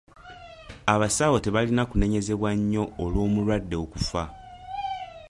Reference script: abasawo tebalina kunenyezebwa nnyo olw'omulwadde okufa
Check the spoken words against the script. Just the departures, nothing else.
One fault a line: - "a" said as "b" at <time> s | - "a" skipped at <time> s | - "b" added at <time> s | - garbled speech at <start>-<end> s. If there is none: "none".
none